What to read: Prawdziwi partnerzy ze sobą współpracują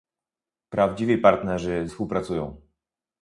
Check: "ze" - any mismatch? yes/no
yes